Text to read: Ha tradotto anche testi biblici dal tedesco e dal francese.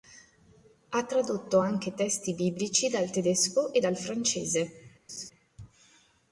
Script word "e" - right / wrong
right